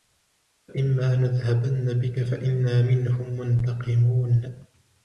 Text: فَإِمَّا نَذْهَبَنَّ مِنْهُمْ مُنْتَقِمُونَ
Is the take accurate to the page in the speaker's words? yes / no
no